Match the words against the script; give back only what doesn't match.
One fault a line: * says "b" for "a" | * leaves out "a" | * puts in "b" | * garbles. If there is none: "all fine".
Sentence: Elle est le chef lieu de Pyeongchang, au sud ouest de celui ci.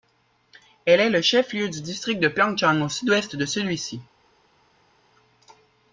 * puts in "du district"